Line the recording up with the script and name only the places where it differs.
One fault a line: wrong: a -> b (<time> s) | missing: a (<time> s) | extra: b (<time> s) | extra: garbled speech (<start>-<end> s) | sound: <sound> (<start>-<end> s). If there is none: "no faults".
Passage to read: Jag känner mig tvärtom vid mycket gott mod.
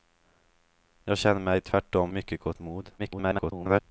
missing: vid (2.1 s)
extra: garbled speech (3.0-3.8 s)